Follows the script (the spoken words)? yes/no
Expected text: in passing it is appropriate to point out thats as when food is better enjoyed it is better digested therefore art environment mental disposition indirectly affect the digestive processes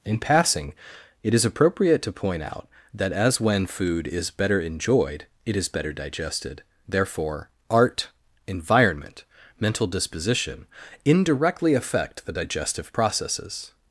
no